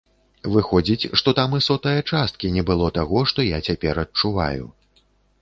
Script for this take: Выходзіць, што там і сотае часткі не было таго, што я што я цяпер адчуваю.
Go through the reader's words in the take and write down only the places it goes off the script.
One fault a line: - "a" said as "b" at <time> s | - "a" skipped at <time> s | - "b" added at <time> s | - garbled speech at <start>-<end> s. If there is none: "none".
- "што я" skipped at 3.6 s